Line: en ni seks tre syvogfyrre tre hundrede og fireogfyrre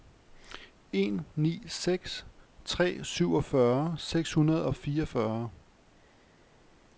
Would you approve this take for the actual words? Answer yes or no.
no